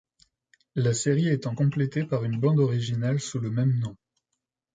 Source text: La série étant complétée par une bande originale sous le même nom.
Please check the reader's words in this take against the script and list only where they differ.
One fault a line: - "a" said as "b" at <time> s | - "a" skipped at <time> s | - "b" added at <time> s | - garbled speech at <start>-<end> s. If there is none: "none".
none